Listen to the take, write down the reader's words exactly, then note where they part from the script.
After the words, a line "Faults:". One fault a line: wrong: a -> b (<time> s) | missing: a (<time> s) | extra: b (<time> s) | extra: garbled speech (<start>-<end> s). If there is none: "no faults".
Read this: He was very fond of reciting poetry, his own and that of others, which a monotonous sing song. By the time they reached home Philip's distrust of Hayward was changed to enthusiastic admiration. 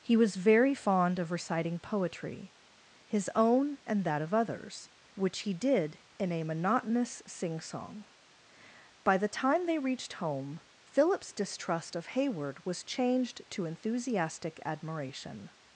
He was very fond of reciting poetry, his own and that of others, which he did in a monotonous sing song. By the time they reached home Philip's distrust of Hayward was changed to enthusiastic admiration.
Faults:
extra: he did in (5.4 s)